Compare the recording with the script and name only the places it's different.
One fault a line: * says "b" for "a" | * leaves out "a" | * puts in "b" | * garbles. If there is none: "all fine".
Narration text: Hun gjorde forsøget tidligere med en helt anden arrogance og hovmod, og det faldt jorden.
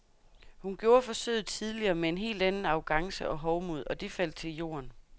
* puts in "til"